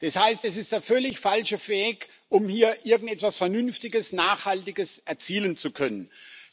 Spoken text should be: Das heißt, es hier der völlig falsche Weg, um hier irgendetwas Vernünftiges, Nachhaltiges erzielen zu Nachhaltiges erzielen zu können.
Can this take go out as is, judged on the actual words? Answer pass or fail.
fail